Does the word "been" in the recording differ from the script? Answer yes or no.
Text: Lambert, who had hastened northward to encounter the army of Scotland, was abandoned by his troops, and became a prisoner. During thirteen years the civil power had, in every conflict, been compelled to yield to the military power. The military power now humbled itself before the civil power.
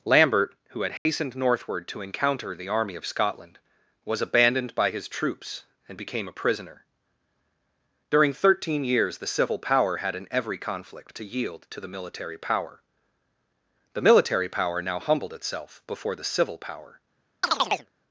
yes